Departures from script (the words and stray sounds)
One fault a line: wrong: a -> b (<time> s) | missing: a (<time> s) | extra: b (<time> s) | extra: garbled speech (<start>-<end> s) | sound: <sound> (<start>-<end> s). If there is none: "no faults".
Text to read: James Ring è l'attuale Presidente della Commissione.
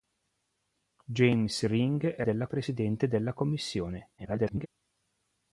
wrong: l'attuale -> della (2.2 s)
extra: garbled speech (4.2-4.7 s)